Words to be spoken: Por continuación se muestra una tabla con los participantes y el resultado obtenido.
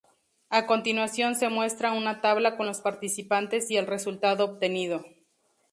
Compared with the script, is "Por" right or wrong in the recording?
wrong